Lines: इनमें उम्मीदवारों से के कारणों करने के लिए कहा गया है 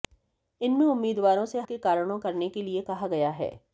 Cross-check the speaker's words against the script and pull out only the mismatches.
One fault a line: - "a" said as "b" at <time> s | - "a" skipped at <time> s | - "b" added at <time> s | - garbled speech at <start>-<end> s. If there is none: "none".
none